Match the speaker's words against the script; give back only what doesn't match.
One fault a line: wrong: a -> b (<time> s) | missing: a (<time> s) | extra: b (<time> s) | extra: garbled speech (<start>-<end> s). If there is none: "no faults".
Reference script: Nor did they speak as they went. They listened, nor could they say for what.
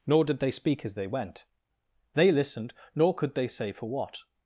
no faults